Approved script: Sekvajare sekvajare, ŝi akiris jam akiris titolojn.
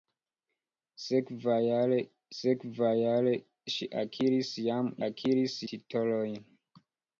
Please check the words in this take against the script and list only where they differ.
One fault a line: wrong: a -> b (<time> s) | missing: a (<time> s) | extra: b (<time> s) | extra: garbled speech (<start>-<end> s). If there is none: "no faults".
no faults